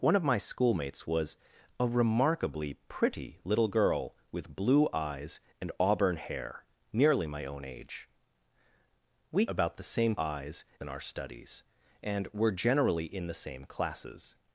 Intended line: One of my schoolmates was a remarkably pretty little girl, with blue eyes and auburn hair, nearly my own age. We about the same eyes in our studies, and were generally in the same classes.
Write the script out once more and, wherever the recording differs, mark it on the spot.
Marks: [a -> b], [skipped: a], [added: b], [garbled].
One of my schoolmates was a remarkably pretty little girl, with blue eyes and auburn hair, nearly my own age. We about the same eyes in our studies, and were generally in the same classes.